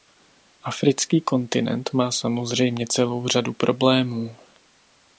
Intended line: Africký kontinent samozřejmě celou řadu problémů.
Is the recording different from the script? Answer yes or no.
yes